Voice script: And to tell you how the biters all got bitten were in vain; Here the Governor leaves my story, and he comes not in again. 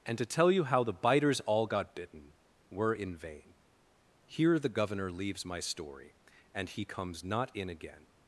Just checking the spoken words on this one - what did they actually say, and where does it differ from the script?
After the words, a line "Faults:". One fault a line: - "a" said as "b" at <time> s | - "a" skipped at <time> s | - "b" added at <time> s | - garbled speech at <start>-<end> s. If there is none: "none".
And to tell you how the biters all got bitten were in vain; Here the Governor leaves my story, and he comes not in again.
Faults:
none